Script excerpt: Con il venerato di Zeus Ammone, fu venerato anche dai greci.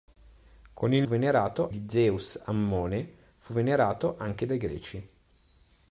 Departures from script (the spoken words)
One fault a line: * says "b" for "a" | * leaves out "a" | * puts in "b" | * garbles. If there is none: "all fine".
all fine